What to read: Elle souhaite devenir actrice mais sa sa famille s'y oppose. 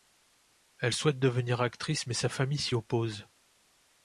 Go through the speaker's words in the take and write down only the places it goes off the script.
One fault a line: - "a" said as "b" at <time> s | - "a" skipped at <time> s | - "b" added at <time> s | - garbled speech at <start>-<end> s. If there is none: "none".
- "sa" skipped at 2.3 s